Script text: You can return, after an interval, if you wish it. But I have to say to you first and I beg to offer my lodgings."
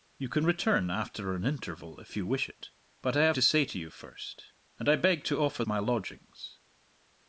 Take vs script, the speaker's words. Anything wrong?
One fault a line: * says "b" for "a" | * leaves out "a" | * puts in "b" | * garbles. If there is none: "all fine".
all fine